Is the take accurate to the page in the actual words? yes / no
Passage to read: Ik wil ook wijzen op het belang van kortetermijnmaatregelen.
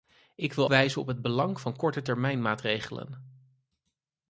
no